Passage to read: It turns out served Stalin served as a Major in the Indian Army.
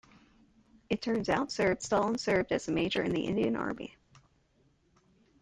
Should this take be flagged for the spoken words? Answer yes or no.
no